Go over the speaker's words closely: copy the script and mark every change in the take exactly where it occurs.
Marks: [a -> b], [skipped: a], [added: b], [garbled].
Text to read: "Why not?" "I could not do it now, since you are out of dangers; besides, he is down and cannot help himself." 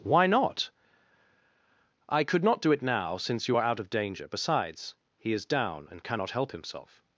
"Why not?" "I could not do it now, since you are out of [dangers; -> danger] besides, he is down and cannot help himself."